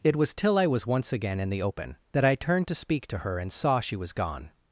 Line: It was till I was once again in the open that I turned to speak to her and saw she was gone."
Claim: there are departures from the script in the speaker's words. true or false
false